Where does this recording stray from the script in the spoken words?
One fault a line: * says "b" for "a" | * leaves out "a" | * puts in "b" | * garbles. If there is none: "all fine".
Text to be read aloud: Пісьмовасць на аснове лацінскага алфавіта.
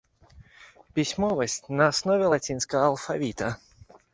all fine